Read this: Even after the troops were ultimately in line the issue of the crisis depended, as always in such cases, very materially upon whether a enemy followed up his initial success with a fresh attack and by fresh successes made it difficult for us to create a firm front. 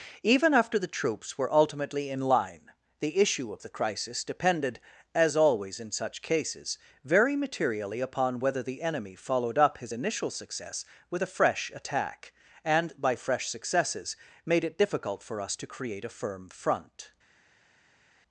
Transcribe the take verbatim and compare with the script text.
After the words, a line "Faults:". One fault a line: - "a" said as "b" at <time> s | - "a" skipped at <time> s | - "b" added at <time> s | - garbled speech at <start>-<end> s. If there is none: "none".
Even after the troops were ultimately in line the issue of the crisis depended, as always in such cases, very materially upon whether the enemy followed up his initial success with a fresh attack and by fresh successes made it difficult for us to create a firm front.
Faults:
- "a" said as "the" at 8.6 s